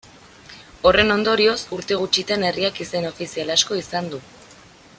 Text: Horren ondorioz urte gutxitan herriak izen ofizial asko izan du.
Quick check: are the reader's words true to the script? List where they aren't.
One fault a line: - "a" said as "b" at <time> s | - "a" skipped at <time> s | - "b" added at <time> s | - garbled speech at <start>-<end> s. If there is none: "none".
none